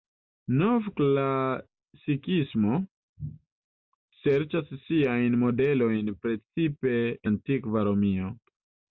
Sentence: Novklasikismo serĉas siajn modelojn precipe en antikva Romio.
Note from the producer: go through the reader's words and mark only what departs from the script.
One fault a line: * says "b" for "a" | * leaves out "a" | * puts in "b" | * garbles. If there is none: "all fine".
* leaves out "en"